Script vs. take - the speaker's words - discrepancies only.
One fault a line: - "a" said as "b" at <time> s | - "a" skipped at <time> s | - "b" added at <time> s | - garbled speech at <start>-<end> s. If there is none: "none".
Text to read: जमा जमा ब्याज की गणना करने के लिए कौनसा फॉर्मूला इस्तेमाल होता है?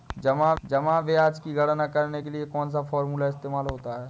none